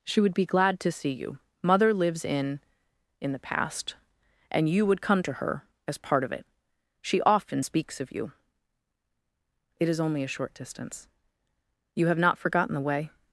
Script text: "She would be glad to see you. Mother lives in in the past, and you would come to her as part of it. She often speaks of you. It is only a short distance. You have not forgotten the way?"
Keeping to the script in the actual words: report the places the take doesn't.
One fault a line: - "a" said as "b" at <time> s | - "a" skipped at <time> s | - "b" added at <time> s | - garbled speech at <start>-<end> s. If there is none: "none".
none